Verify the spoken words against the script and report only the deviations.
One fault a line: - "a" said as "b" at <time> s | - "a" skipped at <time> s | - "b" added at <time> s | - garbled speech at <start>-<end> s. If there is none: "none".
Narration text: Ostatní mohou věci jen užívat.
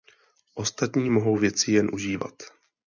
none